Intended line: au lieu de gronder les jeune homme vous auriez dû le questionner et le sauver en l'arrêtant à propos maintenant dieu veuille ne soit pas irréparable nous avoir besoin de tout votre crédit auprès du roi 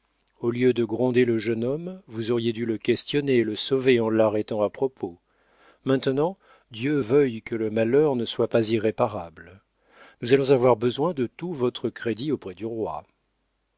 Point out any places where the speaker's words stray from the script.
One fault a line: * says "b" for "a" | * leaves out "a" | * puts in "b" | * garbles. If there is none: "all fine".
* says "le" for "les"
* puts in "que le malheur"
* puts in "allons"